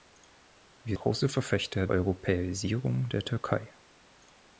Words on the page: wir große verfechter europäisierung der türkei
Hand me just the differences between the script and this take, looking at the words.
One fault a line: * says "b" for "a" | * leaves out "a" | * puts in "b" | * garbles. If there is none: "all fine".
all fine